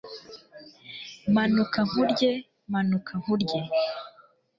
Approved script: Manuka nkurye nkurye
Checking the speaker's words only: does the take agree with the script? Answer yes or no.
no